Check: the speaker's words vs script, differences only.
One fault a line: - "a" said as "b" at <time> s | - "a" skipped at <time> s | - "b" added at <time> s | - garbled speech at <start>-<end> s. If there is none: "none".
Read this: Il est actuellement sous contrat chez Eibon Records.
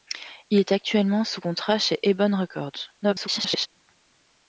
- garbled speech at 3.0-3.7 s